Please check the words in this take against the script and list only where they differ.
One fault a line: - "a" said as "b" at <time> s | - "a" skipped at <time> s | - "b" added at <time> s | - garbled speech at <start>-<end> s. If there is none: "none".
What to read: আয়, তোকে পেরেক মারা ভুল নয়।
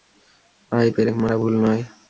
- "তোকে" skipped at 0.9 s